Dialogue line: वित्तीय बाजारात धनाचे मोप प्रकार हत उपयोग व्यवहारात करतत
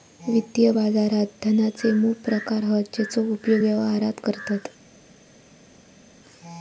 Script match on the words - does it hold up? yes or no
no